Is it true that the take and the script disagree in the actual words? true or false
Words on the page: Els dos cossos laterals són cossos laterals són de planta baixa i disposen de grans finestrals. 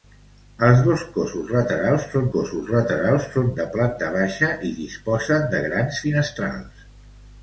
false